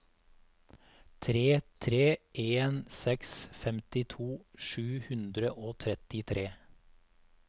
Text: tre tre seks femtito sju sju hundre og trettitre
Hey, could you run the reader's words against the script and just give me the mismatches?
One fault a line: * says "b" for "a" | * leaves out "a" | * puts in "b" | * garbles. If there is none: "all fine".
* puts in "en"
* leaves out "sju"